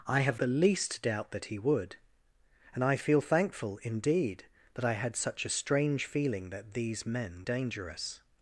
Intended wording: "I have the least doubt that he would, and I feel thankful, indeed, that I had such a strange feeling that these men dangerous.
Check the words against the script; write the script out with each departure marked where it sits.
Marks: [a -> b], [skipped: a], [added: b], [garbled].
"I have the least doubt that he would, and I feel thankful, indeed, that I had such a strange feeling that these men dangerous.